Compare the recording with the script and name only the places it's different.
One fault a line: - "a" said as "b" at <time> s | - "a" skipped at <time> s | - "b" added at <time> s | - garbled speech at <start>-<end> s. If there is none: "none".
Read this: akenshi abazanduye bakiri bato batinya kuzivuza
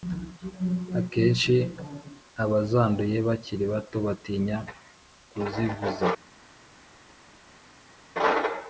none